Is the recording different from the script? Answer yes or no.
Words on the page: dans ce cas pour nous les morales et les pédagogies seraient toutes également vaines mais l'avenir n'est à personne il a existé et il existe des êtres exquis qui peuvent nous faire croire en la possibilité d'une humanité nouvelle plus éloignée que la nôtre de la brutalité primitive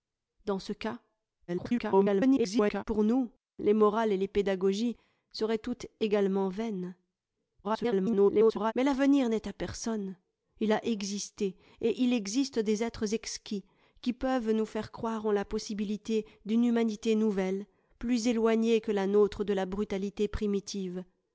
yes